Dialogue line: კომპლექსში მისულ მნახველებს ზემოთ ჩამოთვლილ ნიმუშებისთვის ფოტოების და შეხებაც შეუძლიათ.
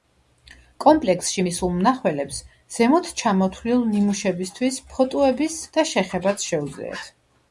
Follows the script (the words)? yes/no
yes